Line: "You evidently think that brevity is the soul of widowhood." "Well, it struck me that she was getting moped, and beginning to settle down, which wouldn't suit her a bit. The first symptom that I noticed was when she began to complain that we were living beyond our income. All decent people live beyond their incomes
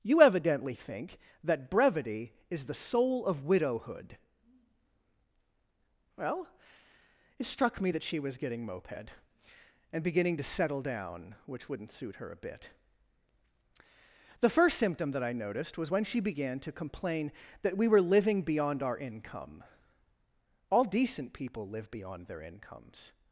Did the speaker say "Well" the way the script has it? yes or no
yes